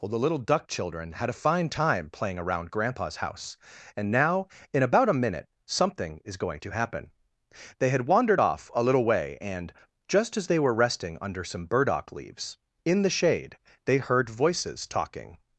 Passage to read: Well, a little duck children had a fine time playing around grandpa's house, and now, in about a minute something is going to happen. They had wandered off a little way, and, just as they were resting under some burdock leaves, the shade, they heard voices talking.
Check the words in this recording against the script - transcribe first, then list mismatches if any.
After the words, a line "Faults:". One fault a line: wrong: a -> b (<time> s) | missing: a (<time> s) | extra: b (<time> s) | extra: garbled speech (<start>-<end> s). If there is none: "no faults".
Well, the little duck children had a fine time playing around grandpa's house, and now, in about a minute something is going to happen. They had wandered off a little way, and, just as they were resting under some burdock leaves, in the shade, they heard voices talking.
Faults:
wrong: a -> the (0.1 s)
extra: in (12.9 s)